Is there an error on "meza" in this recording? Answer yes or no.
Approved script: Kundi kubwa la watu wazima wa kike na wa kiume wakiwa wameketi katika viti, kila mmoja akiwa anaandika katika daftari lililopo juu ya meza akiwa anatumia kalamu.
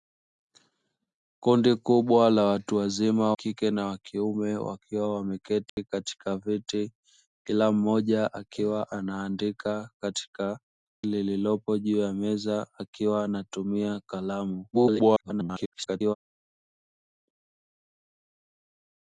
no